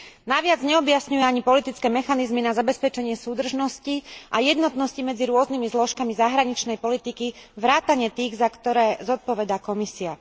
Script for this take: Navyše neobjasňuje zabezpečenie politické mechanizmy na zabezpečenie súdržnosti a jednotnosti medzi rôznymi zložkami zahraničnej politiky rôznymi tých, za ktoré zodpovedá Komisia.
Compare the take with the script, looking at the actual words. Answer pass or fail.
fail